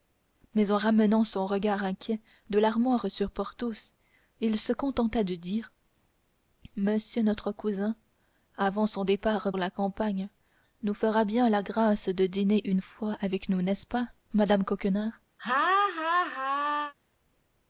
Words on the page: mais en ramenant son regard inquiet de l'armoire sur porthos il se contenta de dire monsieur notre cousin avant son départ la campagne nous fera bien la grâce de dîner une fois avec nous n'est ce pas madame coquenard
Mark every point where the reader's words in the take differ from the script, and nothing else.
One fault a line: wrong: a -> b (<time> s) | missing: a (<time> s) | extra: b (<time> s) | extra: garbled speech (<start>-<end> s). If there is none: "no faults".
no faults